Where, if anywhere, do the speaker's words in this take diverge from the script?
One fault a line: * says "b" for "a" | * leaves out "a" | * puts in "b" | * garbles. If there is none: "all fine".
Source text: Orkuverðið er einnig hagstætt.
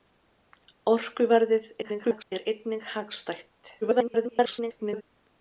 * garbles
* garbles